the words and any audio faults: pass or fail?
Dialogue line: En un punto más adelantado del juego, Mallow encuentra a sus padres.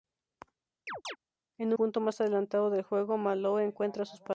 fail